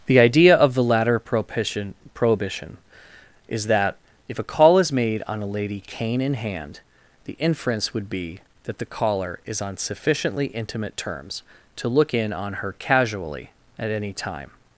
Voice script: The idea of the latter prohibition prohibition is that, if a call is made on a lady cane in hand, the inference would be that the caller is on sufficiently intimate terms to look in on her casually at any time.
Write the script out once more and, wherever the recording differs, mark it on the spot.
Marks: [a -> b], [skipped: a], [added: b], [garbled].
The idea of the latter prohibition prohibition is that, if a call is made on a lady cane in hand, the inference would be that the caller is on sufficiently intimate terms to look in on her casually at any time.